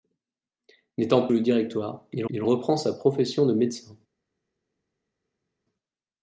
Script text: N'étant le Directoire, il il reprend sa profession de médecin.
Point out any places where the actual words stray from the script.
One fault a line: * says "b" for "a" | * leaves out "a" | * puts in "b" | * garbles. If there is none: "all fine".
all fine